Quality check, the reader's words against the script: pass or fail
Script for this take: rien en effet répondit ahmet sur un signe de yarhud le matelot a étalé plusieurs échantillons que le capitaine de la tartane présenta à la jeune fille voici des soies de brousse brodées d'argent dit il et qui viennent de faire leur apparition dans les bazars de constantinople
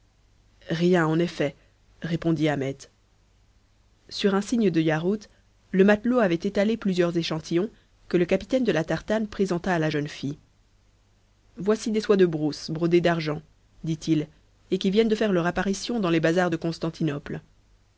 fail